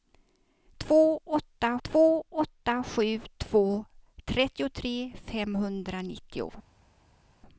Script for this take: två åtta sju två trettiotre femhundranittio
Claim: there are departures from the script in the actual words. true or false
true